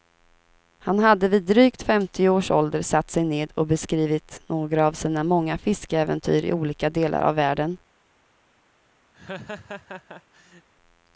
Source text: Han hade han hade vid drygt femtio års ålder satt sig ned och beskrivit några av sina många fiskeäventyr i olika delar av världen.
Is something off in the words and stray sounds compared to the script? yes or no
yes